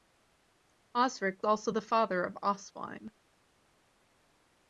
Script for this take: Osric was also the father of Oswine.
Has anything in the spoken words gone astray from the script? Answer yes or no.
yes